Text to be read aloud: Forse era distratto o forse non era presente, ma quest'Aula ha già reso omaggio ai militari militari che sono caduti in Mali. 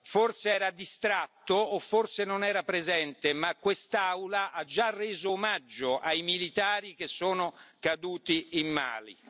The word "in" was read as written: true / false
true